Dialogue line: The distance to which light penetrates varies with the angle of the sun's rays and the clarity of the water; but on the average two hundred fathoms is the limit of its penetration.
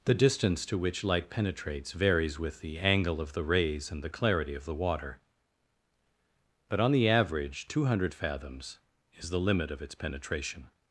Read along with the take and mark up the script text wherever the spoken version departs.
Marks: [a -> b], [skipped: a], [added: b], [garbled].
The distance to which light penetrates varies with the angle of the [skipped: sun's] rays and the clarity of the water; but on the average two hundred fathoms is the limit of its penetration.